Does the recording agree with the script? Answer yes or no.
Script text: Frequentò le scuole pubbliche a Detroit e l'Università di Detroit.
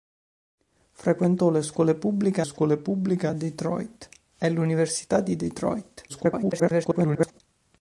no